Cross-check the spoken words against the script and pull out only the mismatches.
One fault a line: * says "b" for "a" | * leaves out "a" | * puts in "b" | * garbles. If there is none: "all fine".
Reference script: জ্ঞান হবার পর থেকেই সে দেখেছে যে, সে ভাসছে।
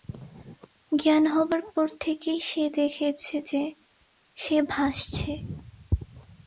all fine